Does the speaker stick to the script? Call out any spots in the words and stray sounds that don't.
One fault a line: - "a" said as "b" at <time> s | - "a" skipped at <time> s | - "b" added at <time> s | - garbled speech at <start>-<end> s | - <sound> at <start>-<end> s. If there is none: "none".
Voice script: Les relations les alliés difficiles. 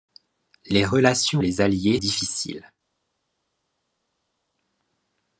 none